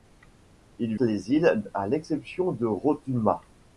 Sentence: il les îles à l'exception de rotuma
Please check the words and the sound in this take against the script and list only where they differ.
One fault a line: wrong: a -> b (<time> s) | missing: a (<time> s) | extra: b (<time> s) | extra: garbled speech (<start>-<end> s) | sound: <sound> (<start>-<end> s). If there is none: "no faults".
no faults